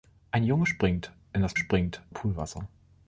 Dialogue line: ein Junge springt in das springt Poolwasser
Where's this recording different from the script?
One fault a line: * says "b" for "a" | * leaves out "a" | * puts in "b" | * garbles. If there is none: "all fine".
all fine